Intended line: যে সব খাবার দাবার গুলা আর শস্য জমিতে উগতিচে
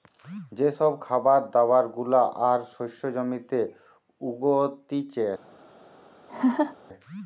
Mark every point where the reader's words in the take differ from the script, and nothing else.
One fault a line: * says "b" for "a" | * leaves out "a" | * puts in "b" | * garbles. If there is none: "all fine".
all fine